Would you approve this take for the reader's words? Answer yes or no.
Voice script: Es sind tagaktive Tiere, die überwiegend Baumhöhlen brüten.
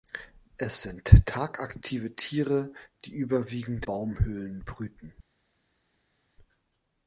yes